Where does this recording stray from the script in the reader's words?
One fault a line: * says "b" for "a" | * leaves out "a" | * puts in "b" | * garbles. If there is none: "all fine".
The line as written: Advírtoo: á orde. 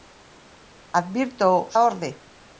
all fine